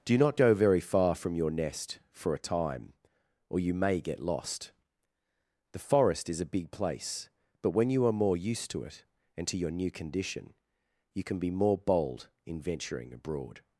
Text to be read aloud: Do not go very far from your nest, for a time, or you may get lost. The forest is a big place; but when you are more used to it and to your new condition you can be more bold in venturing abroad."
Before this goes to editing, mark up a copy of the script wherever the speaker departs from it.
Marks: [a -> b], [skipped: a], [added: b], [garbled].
Do not go very far from your nest, for a time, or you may get lost. The forest is a big place; but when you are more used to it and to your new condition you can be more bold in venturing abroad."